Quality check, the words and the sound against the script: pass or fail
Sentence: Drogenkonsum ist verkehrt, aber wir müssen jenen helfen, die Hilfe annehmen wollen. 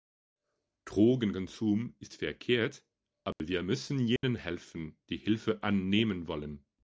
fail